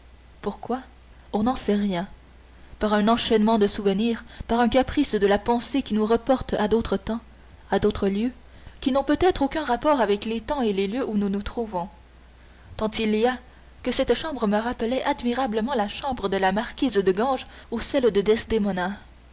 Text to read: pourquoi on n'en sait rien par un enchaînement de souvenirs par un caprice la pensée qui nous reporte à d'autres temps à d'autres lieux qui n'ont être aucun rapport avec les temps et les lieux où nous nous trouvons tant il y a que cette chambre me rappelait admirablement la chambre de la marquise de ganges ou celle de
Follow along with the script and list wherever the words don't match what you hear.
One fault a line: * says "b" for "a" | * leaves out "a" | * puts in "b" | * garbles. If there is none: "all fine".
* puts in "de"
* puts in "peut"